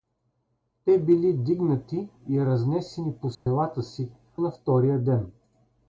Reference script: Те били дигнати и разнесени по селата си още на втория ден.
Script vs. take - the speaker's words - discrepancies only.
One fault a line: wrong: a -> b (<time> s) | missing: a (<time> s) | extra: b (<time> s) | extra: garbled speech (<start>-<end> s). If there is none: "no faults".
missing: още (4.1 s)